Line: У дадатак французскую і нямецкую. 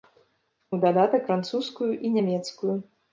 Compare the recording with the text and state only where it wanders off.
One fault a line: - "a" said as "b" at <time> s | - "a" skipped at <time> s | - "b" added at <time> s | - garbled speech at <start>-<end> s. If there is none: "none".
none